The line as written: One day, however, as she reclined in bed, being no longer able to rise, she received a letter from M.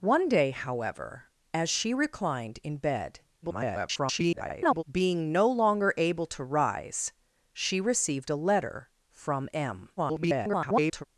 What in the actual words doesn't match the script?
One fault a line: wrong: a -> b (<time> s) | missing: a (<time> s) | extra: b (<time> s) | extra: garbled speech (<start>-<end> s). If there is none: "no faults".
extra: garbled speech (3.4-4.8 s)
extra: garbled speech (10.0-11.0 s)